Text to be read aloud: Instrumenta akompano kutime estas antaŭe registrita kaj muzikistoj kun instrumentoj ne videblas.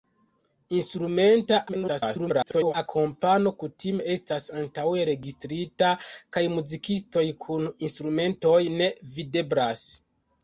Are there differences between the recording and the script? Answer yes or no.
yes